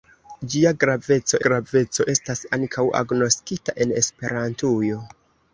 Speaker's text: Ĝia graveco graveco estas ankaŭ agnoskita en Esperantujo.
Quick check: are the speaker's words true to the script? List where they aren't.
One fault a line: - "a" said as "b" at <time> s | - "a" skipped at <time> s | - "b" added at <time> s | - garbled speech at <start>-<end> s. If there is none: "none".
none